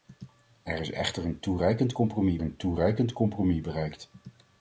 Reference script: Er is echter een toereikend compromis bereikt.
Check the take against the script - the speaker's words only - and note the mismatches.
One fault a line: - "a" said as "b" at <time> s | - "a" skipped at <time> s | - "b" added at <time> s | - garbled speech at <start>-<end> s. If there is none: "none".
- "een toereikend compromis" added at 2.4 s